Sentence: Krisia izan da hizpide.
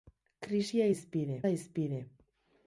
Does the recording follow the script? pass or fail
fail